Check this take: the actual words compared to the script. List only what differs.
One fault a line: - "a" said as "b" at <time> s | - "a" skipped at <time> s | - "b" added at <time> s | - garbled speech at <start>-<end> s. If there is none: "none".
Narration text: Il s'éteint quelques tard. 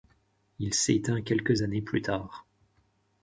- "années plus" added at 1.6 s